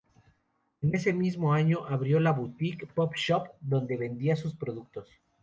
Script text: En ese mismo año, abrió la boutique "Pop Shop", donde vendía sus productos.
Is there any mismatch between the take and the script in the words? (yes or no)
no